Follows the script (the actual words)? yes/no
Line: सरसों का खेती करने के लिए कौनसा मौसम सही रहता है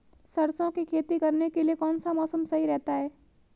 no